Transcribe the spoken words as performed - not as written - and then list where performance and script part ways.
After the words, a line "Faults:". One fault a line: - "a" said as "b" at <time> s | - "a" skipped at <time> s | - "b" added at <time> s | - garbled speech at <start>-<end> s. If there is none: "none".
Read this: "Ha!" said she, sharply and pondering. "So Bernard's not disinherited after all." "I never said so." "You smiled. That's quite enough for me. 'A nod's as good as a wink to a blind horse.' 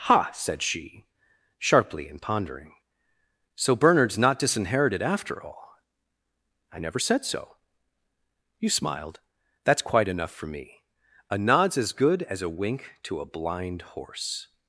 "Ha!" said she, sharply and pondering. "So Bernard's not disinherited after all." "I never said so." "You smiled. That's quite enough for me. 'A nod's as good as a wink to a blind horse.'
Faults:
none